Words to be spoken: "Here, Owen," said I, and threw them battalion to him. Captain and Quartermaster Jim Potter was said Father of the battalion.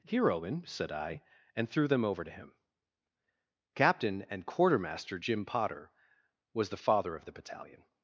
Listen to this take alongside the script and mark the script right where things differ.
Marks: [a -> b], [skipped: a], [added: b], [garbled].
"Here, Owen," said I, and threw them [battalion -> over] to him. Captain and Quartermaster Jim Potter was [said -> the] Father of the battalion.